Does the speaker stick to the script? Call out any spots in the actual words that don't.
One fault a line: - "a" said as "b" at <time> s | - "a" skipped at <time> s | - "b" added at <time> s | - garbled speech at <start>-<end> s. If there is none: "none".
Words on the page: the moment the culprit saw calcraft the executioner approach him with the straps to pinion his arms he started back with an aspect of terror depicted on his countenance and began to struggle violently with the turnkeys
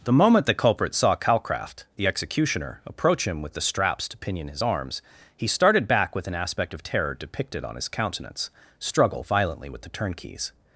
- "and began to" skipped at 8.5 s